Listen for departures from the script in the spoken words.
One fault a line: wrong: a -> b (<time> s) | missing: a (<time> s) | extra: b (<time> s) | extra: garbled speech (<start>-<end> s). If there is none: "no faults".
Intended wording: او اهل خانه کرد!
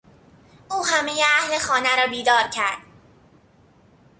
extra: همهی (0.8 s)
extra: را بیدار (1.9 s)